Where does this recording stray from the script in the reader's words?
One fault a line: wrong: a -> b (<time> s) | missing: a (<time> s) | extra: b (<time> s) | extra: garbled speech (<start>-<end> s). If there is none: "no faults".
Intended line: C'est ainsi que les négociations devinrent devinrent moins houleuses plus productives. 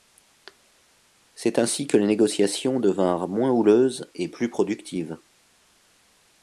missing: devinrent (3.3 s)
extra: et (4.2 s)